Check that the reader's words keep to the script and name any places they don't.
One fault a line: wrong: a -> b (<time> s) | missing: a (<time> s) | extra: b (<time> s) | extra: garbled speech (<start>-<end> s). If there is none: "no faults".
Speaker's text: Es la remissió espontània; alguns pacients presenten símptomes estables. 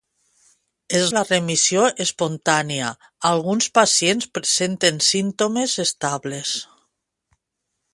no faults